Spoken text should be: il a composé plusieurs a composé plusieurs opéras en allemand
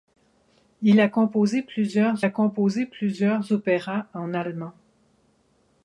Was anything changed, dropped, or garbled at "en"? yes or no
no